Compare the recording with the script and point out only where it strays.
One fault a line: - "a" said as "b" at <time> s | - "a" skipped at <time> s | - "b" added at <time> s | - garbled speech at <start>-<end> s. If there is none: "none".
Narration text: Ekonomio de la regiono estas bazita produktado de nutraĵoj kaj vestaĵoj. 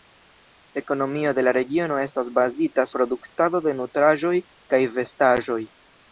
none